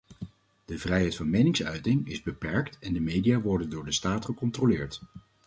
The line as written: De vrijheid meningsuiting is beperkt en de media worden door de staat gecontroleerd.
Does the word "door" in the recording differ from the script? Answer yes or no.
no